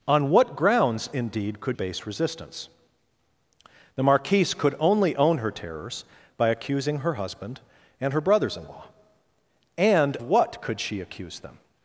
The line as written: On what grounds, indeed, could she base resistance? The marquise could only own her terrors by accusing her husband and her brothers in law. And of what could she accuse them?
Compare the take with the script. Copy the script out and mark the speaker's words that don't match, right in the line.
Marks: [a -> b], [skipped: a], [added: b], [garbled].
On what grounds, indeed, could [skipped: she] base resistance? The marquise could only own her terrors by accusing her husband and her brothers in law. And [skipped: of] what could she accuse them?